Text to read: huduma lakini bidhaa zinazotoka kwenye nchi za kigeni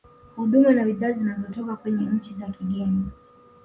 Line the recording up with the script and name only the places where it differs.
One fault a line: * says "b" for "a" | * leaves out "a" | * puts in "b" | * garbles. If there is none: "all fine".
* says "na" for "lakini"